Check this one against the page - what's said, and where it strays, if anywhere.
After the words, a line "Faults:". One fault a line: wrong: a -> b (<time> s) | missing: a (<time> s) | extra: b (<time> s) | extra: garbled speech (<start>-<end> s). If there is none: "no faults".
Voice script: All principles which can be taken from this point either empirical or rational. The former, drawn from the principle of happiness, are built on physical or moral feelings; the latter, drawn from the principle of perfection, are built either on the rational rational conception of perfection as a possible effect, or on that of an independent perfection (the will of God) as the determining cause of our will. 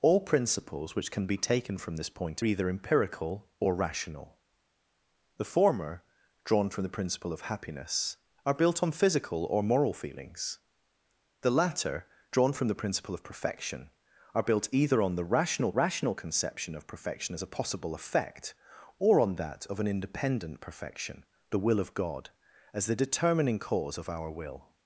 All principles which can be taken from this point either empirical or rational. The former, drawn from the principle of happiness, are built on physical or moral feelings; the latter, drawn from the principle of perfection, are built either on the rational rational conception of perfection as a possible effect, or on that of an independent perfection (the will of God) as the determining cause of our will.
Faults:
no faults